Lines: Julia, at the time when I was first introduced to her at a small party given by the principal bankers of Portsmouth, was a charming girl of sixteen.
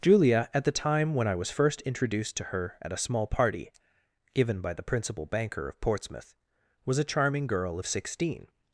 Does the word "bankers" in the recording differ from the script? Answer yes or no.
yes